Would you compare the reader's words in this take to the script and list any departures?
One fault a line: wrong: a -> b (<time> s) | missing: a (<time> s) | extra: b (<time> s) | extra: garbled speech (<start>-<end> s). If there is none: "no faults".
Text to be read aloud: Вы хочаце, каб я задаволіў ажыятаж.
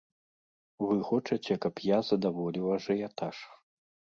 no faults